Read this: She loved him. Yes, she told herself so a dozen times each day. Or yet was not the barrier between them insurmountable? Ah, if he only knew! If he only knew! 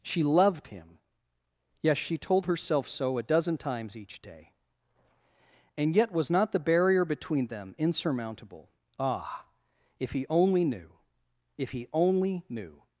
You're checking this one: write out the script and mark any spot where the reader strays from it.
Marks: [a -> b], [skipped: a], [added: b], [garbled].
She loved him. Yes, she told herself so a dozen times each day. [Or -> And] yet was not the barrier between them insurmountable? Ah, if he only knew! If he only knew!